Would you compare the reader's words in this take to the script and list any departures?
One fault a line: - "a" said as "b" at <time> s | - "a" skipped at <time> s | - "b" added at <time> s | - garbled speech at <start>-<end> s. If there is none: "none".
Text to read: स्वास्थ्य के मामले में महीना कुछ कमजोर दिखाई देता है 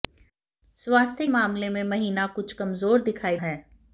- "के" skipped at 1.3 s
- "देता" skipped at 3.4 s